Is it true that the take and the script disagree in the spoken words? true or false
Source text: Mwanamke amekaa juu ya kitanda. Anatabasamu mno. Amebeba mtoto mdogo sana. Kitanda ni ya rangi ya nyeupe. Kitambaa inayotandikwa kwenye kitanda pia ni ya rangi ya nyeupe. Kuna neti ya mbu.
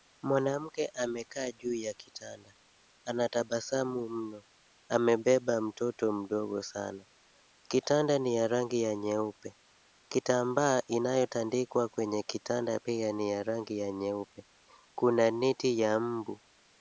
false